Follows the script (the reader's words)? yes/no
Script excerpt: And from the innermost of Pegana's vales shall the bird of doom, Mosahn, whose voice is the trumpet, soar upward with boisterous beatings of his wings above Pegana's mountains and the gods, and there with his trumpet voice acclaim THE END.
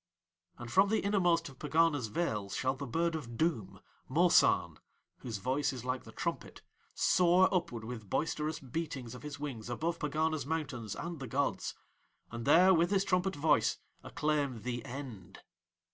no